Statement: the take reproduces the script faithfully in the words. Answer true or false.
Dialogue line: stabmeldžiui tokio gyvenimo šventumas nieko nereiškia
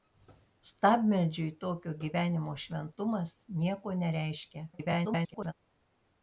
false